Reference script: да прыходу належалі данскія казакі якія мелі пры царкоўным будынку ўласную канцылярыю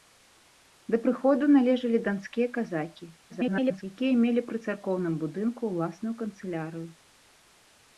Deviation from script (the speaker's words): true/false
true